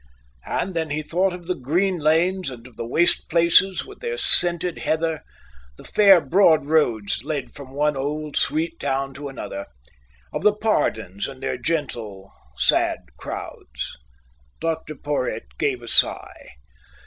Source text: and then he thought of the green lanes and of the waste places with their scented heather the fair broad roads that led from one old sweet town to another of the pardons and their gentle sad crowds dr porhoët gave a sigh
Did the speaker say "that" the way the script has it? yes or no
no